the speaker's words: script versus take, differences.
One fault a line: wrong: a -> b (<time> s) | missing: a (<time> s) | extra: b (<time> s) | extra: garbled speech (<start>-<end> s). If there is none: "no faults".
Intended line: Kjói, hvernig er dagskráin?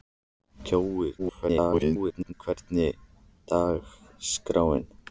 extra: garbled speech (1.2-2.3 s)